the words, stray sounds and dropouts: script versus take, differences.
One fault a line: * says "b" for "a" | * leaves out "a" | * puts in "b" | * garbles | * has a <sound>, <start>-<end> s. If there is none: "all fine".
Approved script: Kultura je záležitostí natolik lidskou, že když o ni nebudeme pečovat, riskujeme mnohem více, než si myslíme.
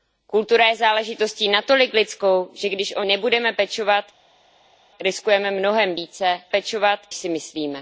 * leaves out "ni"
* says "pečovat" for "než"